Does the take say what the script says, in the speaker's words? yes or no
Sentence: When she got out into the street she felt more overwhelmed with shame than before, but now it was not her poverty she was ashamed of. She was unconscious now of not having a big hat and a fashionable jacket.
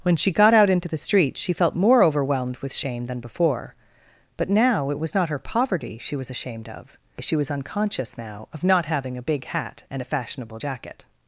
yes